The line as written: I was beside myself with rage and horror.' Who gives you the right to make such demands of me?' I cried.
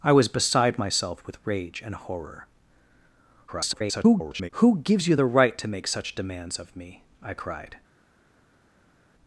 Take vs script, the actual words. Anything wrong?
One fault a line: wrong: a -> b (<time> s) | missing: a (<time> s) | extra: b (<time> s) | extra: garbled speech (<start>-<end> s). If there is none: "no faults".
extra: garbled speech (3.5-4.5 s)